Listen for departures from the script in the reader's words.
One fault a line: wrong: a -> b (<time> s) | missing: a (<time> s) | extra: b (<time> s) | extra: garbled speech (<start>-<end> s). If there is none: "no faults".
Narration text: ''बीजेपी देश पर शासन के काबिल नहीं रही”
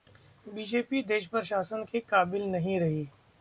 no faults